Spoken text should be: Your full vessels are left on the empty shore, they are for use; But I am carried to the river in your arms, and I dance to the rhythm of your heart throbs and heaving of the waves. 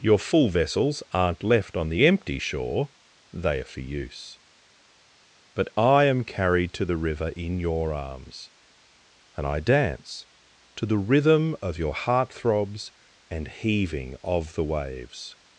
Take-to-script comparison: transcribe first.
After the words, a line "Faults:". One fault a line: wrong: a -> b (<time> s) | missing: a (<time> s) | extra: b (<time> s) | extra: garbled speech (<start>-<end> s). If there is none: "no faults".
Your full vessels aren't left on the empty shore, they are for use; But I am carried to the river in your arms, and I dance to the rhythm of your heart throbs and heaving of the waves.
Faults:
wrong: are -> aren't (1.1 s)